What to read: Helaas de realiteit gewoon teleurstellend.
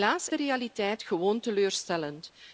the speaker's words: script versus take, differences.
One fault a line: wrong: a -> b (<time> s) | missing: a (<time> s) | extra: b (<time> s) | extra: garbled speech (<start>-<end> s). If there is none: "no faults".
no faults